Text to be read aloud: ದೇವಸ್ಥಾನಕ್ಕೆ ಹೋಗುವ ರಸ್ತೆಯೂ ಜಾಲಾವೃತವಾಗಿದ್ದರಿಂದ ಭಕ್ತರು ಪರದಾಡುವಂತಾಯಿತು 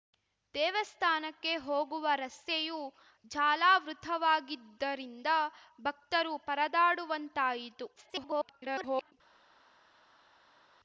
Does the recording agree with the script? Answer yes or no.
no